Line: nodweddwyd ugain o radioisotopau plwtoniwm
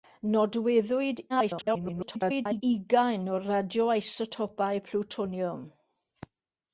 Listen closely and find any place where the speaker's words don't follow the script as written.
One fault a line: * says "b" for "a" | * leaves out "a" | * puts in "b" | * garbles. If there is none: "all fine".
* garbles